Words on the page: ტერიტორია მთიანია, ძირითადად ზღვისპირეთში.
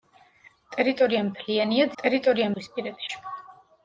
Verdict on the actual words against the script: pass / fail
fail